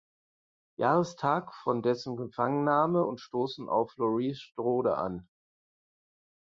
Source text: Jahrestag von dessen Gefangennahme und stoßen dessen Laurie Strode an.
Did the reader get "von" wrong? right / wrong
right